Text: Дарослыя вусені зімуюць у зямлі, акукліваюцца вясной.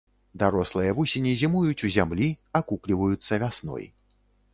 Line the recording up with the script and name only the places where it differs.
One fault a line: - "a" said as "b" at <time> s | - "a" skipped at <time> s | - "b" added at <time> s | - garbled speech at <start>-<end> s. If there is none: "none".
none